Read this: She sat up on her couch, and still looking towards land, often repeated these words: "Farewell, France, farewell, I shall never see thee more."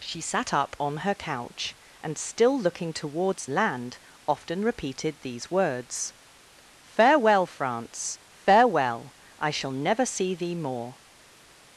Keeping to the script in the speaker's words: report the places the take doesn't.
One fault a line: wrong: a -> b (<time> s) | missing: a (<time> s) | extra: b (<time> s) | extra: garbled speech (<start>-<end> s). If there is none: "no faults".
no faults